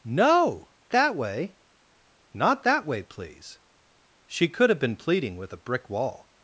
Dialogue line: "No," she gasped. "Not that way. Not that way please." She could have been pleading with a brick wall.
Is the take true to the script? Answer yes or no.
no